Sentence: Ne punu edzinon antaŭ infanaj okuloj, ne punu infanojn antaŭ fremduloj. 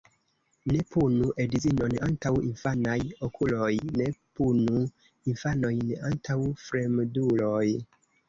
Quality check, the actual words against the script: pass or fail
pass